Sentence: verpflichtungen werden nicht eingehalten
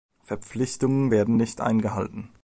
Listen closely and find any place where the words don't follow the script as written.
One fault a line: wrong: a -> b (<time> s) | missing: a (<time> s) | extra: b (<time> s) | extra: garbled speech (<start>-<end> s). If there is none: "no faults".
no faults